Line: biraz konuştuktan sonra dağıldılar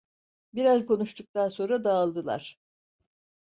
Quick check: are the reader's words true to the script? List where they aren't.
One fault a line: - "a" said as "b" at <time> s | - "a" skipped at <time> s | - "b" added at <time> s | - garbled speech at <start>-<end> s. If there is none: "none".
none